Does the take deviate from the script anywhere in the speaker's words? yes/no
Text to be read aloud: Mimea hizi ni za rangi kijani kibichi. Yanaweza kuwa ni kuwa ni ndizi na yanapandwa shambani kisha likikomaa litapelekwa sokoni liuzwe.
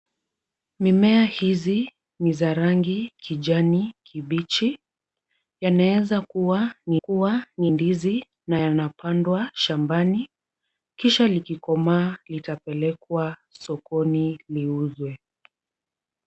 no